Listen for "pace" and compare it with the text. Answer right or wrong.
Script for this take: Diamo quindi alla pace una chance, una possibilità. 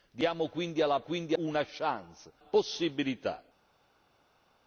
wrong